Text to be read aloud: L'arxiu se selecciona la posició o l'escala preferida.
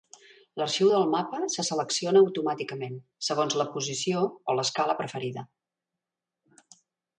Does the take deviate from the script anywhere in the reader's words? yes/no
yes